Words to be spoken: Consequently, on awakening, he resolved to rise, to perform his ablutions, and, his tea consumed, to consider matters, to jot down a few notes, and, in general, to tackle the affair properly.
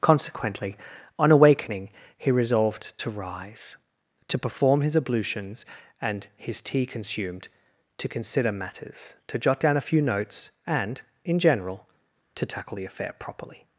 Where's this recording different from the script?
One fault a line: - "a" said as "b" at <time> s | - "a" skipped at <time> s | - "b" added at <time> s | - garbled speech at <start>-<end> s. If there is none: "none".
none